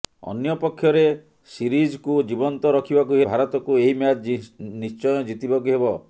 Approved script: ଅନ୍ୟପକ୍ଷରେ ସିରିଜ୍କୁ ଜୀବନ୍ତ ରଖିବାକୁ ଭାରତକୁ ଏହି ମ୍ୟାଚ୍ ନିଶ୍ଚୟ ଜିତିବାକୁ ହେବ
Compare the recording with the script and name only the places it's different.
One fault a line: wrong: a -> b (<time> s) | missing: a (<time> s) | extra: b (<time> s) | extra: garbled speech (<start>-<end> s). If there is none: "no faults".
no faults